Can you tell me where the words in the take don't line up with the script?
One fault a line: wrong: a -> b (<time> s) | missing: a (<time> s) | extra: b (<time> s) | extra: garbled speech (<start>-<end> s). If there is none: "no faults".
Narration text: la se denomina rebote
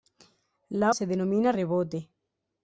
no faults